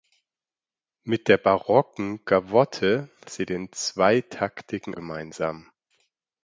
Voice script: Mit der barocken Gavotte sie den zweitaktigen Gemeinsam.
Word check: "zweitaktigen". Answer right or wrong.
right